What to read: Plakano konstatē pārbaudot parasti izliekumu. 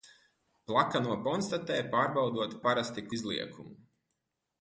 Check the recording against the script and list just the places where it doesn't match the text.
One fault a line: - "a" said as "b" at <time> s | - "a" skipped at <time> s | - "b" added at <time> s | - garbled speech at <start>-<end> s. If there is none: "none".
none